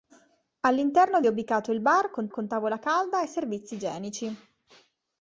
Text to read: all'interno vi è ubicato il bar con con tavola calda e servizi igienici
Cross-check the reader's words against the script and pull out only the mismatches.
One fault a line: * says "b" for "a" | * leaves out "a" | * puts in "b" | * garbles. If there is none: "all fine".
all fine